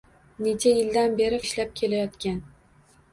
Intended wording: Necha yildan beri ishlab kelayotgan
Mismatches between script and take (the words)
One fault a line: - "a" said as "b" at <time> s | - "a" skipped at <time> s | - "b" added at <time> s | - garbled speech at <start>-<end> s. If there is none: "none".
none